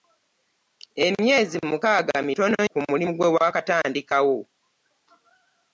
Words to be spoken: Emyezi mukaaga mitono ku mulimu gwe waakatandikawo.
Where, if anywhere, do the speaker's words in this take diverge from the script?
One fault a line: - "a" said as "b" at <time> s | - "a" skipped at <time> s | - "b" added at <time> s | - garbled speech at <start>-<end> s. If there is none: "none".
none